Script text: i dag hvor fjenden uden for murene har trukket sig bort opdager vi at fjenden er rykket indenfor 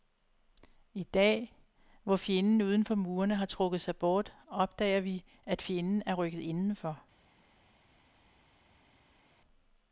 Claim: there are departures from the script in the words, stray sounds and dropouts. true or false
false